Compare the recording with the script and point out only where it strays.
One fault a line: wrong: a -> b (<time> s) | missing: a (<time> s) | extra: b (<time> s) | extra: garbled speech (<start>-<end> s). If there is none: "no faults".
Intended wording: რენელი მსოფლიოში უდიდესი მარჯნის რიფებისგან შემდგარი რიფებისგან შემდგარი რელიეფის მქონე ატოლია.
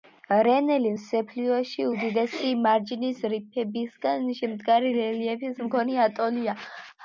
missing: რიფებისგან შემდგარი (4.9 s)